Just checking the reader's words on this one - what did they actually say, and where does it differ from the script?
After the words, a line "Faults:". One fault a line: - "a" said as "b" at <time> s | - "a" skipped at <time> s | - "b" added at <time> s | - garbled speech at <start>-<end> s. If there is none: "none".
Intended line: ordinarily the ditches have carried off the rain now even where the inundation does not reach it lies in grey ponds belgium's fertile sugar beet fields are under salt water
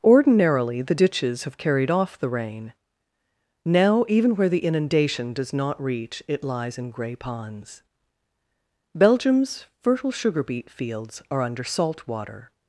ordinarily the ditches have carried off the rain now even where the inundation does not reach it lies in grey ponds belgium's fertile sugar beet fields are under salt water
Faults:
none